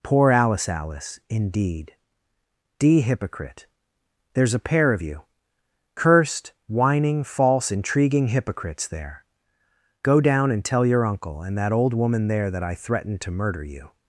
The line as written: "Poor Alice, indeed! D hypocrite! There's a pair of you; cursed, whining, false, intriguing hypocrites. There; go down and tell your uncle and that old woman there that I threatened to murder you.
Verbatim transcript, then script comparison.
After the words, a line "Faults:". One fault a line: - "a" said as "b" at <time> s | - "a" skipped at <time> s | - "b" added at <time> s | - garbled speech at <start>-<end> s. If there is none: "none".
"Poor Alice Alice, indeed! D hypocrite! There's a pair of you; cursed, whining, false, intriguing hypocrites. There; go down and tell your uncle and that old woman there that I threatened to murder you.
Faults:
- "Alice" added at 0.7 s